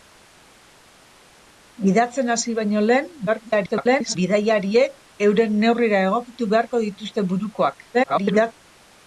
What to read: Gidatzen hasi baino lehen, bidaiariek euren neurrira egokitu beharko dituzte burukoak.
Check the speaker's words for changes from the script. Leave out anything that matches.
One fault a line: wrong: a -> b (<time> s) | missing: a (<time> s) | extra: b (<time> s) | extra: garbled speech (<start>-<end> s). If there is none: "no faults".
extra: garbled speech (3.3-4.2 s)
extra: garbled speech (7.9-8.5 s)